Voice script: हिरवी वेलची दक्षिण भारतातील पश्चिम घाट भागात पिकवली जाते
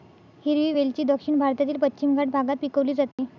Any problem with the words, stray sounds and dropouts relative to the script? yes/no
yes